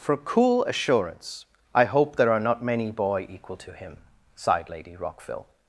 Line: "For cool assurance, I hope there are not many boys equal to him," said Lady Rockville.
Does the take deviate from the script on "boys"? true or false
true